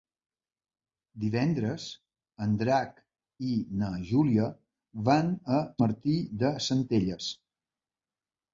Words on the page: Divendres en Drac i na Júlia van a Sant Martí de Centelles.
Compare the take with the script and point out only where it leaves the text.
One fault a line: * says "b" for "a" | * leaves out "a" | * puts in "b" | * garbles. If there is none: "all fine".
* leaves out "Sant"